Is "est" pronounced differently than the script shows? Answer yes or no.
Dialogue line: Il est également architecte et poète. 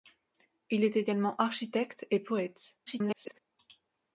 no